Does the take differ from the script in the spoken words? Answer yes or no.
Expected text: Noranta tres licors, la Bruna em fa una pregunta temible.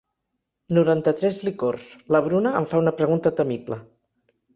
no